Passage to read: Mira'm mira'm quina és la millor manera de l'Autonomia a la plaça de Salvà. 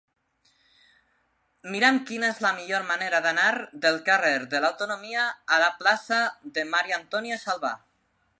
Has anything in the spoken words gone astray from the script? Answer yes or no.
yes